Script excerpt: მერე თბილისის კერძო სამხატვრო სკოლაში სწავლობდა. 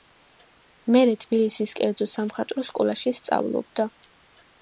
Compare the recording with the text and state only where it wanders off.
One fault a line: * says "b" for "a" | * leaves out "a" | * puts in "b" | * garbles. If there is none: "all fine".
all fine